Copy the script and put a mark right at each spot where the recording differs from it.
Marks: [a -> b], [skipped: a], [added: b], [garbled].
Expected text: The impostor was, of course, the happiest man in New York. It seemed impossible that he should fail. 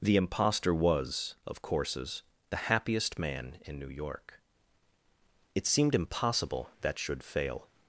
The impostor was, of [course, -> courses] the happiest man in New York. It seemed impossible that [skipped: he] should fail.